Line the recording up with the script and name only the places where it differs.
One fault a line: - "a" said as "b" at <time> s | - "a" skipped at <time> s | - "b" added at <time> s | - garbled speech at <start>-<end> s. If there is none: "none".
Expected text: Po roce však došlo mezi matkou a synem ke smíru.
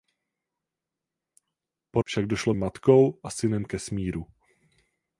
- "roce" skipped at 2.0 s
- "mezi" skipped at 2.5 s